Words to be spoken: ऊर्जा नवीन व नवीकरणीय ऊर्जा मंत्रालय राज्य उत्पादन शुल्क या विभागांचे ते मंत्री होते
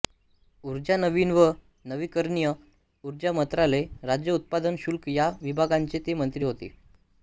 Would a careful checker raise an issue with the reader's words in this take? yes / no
no